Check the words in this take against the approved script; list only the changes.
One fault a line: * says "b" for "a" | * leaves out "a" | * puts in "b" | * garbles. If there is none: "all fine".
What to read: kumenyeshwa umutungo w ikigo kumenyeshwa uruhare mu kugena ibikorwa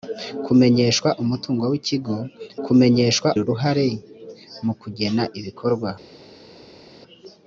all fine